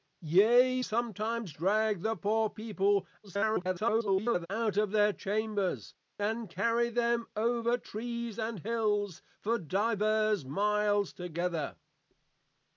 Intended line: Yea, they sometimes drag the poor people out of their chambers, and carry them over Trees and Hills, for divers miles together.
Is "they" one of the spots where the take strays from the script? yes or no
yes